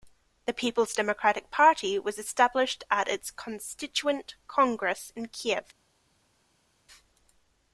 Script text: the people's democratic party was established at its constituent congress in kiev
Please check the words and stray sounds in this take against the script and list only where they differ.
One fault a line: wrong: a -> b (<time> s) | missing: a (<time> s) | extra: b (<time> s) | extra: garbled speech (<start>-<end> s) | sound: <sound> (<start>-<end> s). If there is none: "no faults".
no faults